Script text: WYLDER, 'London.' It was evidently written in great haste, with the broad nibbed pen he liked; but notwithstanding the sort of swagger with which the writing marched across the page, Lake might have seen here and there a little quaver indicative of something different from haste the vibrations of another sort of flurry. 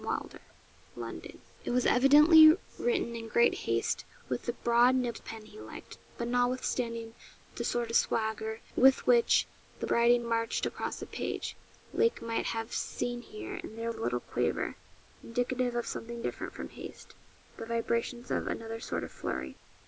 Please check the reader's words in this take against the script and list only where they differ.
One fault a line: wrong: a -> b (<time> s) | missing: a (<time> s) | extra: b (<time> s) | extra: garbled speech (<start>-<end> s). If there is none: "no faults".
no faults